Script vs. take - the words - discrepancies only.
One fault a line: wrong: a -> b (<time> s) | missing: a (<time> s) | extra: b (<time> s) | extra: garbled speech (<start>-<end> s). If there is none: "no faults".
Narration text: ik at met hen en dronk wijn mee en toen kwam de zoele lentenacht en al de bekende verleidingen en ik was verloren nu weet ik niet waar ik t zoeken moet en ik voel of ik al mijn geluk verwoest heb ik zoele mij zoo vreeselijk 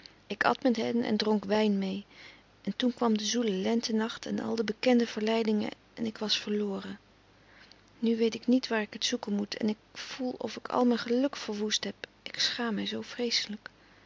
wrong: zoele -> schaam (12.4 s)